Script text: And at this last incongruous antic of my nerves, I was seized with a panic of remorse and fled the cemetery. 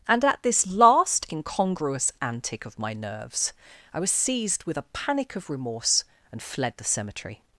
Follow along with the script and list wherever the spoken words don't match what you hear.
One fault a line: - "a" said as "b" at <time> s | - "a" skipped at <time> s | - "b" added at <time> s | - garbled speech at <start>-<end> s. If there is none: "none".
none